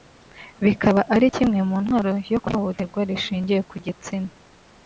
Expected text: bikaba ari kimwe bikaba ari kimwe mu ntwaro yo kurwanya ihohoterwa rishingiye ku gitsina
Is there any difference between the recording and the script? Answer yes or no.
yes